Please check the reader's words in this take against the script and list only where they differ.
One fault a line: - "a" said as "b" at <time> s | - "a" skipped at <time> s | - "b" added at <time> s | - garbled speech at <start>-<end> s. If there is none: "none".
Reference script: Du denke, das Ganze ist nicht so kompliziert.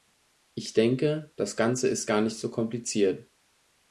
- "Du" said as "Ich" at 0.6 s
- "gar" added at 2.0 s